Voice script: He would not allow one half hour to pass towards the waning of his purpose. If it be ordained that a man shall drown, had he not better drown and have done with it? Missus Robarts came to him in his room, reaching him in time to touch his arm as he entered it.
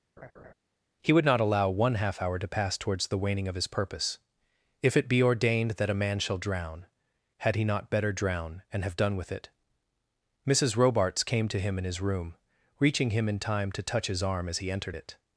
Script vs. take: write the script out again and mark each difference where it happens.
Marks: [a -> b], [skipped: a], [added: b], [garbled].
He would not allow one half hour to pass towards the waning of his purpose. If it be ordained that a man shall drown, had he not better drown and have done with it? Missus Robarts came to him in his room, reaching him in time to touch his arm as he entered it.